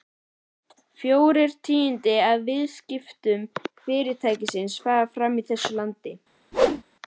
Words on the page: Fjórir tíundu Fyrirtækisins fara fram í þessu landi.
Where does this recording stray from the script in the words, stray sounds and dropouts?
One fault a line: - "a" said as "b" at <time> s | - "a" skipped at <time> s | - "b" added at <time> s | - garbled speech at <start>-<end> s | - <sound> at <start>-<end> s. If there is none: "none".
- "af viðskiptum" added at 2.3 s
- whoosh at 6.5-6.8 s